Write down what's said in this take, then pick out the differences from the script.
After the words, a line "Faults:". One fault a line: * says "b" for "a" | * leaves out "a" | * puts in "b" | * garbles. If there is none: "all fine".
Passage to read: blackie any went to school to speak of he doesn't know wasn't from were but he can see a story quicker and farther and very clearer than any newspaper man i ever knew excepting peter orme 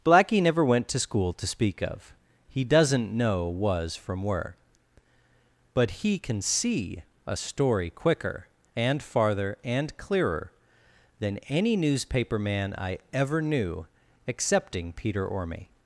blackie never went to school to speak of he doesn't know was from were but he can see a story quicker and farther and clearer than any newspaper man i ever knew excepting peter orme
Faults:
* says "never" for "any"
* says "was" for "wasn't"
* leaves out "very"